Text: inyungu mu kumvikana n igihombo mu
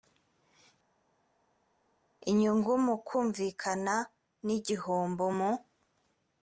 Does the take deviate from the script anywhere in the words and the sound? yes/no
no